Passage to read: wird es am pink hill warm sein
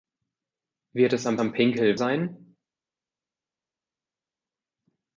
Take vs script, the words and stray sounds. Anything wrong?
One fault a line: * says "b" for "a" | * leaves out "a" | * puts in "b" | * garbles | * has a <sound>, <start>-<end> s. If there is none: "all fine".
* puts in "am"
* leaves out "warm"